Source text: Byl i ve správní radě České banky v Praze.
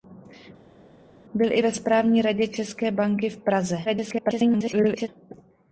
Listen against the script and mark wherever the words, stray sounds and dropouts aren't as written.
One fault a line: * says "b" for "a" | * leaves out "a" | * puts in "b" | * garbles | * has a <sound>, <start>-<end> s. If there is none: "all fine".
* garbles